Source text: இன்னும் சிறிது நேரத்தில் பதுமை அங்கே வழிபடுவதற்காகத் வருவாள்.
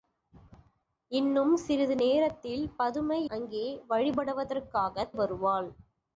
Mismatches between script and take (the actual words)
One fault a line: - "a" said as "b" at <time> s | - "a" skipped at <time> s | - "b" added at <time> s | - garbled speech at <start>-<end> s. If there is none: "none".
none